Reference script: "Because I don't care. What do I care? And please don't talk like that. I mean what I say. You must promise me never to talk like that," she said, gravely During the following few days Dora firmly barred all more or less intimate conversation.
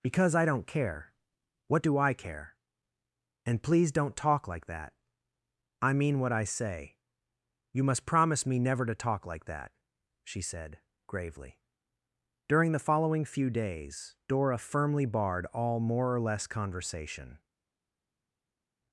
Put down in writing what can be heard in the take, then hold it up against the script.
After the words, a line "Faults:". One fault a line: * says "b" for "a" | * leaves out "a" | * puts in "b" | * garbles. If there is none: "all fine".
"Because I don't care. What do I care? And please don't talk like that. I mean what I say. You must promise me never to talk like that," she said, gravely During the following few days Dora firmly barred all more or less conversation.
Faults:
* leaves out "intimate"